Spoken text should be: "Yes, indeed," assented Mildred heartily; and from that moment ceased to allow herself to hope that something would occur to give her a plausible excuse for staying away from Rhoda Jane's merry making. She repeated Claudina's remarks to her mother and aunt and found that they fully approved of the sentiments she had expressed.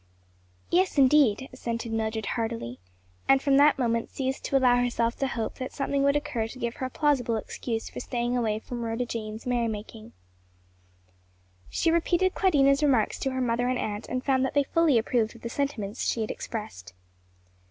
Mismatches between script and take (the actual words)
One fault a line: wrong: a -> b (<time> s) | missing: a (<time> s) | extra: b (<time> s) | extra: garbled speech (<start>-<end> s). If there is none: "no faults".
no faults